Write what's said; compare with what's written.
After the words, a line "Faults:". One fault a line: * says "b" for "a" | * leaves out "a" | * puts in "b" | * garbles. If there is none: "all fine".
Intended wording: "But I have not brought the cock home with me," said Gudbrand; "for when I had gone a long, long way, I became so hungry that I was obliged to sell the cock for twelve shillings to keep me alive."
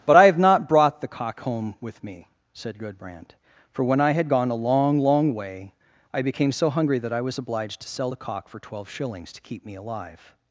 "But I have not brought the cock home with me," said Gudbrand; "for when I had gone a long, long way, I became so hungry that I was obliged to sell the cock for twelve shillings to keep me alive."
Faults:
all fine